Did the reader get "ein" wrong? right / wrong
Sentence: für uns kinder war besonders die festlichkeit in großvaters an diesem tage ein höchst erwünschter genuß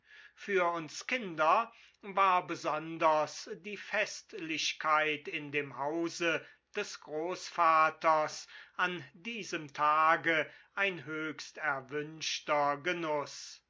right